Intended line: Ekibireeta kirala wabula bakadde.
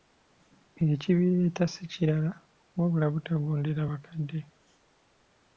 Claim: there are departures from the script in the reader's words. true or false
true